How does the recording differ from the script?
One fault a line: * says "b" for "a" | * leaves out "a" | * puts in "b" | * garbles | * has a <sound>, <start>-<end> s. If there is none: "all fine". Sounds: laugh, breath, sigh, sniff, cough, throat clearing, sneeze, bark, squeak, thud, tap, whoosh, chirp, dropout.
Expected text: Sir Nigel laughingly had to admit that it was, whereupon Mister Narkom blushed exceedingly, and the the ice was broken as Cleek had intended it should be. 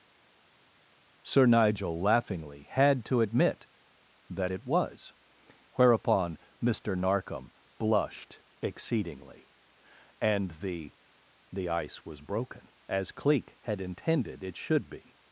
all fine